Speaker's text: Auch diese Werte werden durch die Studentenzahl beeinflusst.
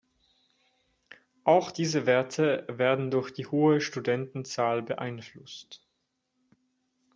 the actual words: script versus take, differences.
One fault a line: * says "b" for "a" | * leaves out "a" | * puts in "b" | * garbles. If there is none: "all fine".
* puts in "hohe"